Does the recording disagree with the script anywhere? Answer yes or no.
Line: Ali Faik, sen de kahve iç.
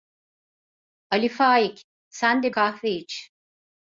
no